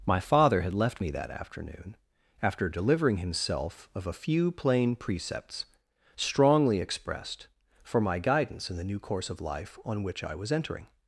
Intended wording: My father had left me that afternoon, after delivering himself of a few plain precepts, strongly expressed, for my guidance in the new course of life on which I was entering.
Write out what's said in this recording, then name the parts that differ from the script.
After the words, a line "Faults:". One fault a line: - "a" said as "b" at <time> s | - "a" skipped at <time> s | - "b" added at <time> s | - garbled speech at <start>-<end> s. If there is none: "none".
My father had left me that afternoon, after delivering himself of a few plain precepts, strongly expressed, for my guidance in the new course of life on which I was entering.
Faults:
none